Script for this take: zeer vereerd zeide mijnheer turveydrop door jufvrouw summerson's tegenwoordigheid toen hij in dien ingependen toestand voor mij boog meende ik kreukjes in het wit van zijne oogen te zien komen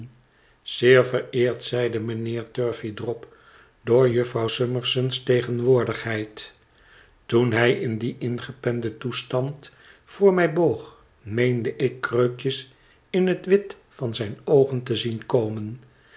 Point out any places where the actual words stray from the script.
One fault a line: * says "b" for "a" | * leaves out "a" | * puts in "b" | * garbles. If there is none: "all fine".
all fine